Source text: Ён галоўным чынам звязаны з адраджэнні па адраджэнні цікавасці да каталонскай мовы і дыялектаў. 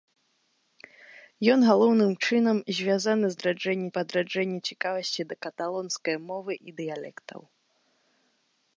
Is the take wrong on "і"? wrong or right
right